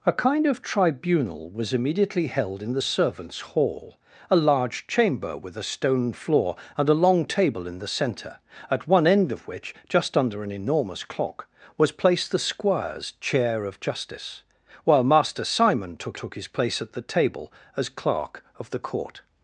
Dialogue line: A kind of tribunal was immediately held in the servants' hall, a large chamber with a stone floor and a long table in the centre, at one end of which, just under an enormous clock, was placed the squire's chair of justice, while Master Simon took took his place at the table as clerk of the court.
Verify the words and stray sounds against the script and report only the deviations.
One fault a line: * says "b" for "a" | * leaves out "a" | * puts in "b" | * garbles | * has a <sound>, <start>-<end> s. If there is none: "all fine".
all fine